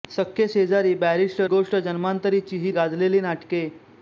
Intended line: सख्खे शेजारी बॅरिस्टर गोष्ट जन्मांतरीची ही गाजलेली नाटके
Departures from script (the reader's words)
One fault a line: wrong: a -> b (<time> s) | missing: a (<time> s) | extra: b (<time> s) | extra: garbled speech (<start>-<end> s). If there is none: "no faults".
no faults